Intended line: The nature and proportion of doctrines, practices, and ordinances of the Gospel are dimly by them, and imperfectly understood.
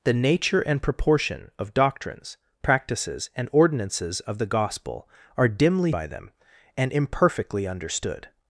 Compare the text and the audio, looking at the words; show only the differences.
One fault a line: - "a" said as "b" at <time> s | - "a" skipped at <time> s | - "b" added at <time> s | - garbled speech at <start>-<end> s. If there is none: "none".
none